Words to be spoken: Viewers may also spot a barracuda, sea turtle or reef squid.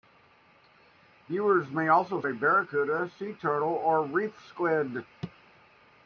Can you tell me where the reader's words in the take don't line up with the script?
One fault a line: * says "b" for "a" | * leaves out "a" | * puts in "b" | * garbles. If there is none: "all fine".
* leaves out "spot"